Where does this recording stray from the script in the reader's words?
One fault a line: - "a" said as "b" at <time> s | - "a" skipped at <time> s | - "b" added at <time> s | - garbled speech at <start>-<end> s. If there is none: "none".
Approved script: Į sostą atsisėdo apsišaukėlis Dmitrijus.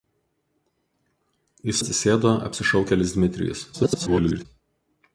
- "sostą" skipped at 1.8 s
- garbled speech at 3.7-4.5 s